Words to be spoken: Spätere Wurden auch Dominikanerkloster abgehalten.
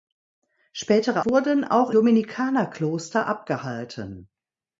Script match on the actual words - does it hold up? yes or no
yes